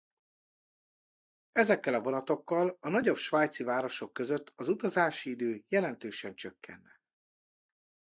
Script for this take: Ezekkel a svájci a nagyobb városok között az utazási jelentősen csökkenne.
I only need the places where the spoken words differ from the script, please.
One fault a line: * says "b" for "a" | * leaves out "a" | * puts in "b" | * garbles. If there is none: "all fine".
* says "vonatokkal" for "svájci"
* puts in "svájci"
* puts in "idő"